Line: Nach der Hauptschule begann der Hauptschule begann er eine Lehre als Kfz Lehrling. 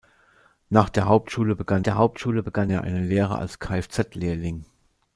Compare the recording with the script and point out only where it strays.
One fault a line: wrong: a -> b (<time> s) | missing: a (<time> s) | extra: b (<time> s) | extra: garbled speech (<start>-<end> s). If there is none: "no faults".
no faults